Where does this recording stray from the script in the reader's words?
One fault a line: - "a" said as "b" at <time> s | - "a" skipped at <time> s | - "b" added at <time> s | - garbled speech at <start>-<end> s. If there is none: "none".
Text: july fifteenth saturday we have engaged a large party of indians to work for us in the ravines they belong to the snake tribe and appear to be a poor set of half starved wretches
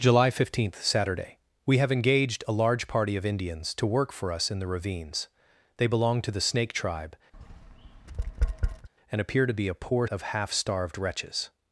- "set" skipped at 10.1 s